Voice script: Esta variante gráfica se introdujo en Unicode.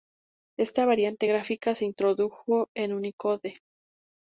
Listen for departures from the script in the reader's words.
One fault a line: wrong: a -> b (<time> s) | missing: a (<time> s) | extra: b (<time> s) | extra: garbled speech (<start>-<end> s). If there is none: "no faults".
no faults